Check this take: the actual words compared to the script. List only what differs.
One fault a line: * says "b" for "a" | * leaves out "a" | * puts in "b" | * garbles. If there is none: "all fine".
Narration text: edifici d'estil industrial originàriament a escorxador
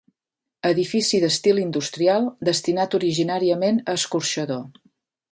* puts in "destinat"